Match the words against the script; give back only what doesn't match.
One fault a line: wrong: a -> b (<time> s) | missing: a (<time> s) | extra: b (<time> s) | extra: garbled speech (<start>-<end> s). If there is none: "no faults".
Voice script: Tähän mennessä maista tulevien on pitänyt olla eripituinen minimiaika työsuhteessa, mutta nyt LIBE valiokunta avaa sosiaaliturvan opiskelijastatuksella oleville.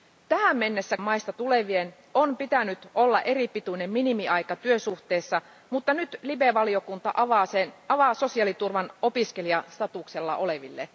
no faults